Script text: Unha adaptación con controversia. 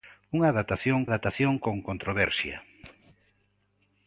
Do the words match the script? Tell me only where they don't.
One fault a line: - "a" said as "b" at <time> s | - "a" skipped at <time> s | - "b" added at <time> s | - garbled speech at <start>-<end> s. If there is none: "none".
- "adaptación" added at 1.1 s